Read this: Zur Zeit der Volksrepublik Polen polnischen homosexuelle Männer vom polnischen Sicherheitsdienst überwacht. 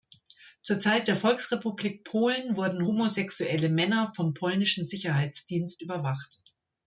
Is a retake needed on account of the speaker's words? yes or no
yes